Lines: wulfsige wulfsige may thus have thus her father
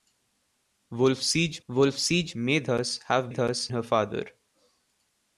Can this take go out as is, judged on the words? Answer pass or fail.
pass